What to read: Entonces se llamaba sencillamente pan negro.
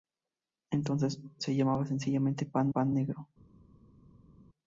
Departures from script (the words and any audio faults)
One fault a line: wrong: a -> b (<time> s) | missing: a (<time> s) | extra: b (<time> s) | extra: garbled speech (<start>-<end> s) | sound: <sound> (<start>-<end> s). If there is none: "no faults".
extra: pan (2.7 s)